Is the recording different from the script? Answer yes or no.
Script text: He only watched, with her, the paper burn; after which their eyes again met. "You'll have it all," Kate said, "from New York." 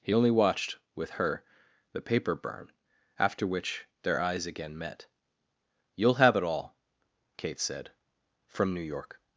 no